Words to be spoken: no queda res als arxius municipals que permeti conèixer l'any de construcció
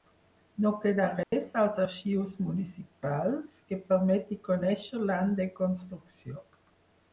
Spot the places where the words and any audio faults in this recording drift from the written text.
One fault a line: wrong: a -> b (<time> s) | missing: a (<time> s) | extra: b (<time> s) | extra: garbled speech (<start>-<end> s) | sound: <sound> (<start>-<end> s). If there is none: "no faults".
sound: dropout (1.2-1.3 s)